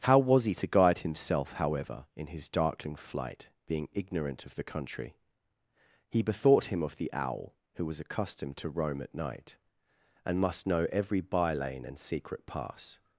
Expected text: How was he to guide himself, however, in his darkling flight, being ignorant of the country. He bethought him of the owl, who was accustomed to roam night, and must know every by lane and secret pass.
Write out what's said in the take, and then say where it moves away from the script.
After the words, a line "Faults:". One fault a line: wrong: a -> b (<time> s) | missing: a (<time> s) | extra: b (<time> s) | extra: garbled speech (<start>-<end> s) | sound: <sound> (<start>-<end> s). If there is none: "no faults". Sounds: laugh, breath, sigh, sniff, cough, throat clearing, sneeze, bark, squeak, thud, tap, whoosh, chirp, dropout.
How was he to guide himself, however, in his darkling flight, being ignorant of the country. He bethought him of the owl, who was accustomed to roam at night, and must know every by lane and secret pass.
Faults:
extra: at (9.0 s)